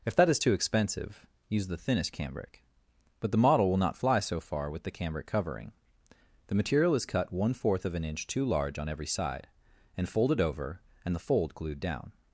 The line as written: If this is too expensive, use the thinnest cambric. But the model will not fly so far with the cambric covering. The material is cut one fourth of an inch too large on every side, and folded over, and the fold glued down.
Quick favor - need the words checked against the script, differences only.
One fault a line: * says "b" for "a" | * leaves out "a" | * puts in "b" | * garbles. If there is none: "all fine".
* says "that" for "this"